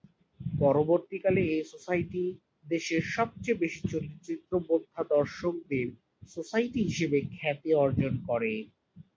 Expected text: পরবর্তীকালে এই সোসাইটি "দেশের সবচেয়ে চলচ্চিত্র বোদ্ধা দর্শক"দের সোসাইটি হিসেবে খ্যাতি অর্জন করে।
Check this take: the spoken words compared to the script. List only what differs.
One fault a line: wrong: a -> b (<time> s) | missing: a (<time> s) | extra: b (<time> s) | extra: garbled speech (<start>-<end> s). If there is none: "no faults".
extra: বেশি (3.6 s)